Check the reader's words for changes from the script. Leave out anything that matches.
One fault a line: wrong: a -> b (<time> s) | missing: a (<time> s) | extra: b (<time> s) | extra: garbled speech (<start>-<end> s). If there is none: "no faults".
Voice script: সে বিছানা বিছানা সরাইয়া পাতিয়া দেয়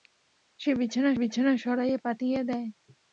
no faults